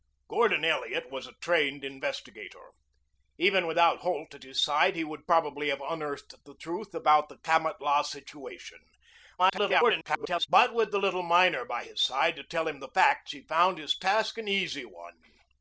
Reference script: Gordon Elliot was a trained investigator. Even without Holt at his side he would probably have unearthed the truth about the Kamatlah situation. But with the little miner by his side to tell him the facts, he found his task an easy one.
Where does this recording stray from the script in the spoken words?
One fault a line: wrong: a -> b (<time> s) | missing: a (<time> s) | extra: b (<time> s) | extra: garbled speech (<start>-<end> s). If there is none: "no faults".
extra: garbled speech (9.4-10.5 s)